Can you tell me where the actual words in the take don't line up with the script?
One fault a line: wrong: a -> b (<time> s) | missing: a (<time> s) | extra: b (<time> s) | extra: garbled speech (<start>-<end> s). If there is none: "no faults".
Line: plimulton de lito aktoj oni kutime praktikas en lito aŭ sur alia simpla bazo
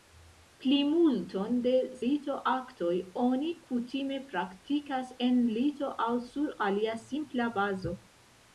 no faults